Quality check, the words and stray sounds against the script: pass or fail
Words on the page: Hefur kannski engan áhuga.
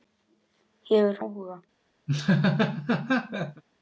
fail